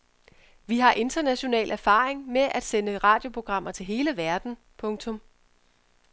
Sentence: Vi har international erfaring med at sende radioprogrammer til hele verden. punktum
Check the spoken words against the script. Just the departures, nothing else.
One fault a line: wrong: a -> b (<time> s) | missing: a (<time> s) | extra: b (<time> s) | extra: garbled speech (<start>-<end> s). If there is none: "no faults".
no faults